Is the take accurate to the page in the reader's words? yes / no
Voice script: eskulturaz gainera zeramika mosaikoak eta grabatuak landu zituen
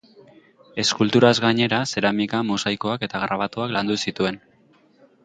yes